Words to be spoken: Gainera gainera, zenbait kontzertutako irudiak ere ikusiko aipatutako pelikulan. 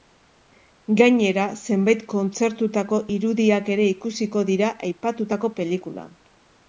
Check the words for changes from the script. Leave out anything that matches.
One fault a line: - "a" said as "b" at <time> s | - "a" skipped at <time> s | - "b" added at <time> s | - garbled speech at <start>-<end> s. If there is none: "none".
- "gainera" skipped at 1.4 s
- "dira" added at 4.5 s